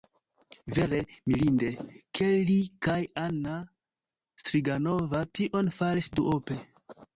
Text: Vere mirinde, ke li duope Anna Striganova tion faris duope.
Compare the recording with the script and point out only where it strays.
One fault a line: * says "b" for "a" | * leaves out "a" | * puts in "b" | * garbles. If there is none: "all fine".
* says "kaj" for "duope"